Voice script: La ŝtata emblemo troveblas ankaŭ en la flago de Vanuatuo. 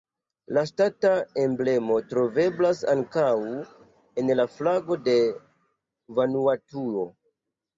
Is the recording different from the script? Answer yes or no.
no